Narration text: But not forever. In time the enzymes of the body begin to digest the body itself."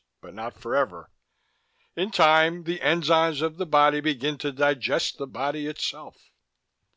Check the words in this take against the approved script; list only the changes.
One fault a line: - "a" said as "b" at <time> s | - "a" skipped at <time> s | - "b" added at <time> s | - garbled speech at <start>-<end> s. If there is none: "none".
none